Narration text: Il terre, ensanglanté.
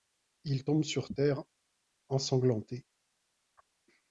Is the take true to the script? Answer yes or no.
no